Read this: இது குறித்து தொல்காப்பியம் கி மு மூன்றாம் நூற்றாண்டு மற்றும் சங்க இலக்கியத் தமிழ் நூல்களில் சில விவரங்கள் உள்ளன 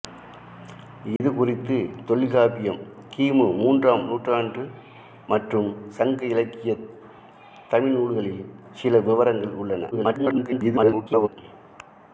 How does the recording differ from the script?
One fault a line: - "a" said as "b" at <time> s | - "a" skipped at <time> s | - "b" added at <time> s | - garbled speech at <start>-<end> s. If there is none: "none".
- garbled speech at 9.9-11.3 s